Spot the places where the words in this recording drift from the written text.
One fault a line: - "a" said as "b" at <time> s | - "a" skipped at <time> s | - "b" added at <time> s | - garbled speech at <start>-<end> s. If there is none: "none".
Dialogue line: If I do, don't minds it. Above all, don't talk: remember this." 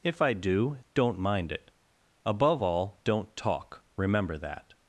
- "minds" said as "mind" at 1.2 s
- "this" said as "that" at 4.4 s